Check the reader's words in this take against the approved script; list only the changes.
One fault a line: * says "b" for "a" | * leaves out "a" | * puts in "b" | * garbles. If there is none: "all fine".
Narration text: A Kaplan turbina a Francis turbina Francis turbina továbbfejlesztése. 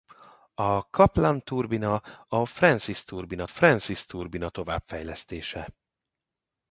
all fine